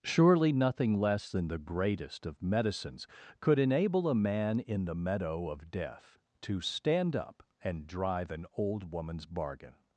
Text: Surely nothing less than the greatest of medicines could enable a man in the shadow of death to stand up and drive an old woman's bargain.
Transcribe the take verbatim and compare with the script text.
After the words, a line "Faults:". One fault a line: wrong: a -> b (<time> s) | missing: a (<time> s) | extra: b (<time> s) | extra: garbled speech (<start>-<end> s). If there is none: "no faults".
Surely nothing less than the greatest of medicines could enable a man in the meadow of death to stand up and drive an old woman's bargain.
Faults:
wrong: shadow -> meadow (4.9 s)